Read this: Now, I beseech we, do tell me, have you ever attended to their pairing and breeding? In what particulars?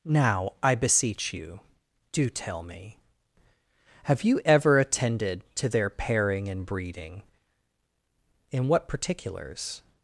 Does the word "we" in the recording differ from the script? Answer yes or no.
yes